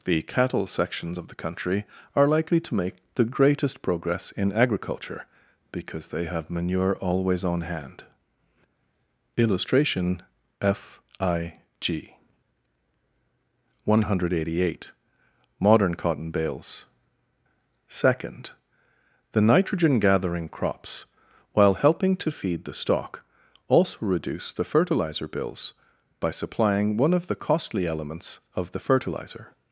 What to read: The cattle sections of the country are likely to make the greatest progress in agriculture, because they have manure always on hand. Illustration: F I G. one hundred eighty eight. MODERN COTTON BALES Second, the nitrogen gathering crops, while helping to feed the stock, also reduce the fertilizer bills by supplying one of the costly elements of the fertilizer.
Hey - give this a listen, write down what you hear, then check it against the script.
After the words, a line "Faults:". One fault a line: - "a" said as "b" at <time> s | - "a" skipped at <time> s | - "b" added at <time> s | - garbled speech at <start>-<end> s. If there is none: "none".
The cattle sections of the country are likely to make the greatest progress in agriculture, because they have manure always on hand. Illustration: F I G. one hundred eighty eight. MODERN COTTON BALES Second, the nitrogen gathering crops, while helping to feed the stock, also reduce the fertilizer bills by supplying one of the costly elements of the fertilizer.
Faults:
none